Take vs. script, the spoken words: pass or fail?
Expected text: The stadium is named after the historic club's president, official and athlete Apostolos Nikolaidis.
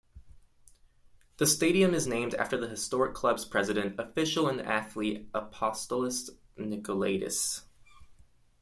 pass